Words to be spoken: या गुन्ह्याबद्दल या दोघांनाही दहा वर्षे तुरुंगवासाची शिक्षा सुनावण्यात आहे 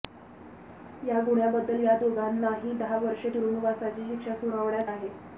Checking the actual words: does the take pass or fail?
pass